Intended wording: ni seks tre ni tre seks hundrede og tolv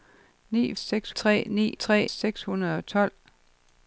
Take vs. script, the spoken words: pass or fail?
pass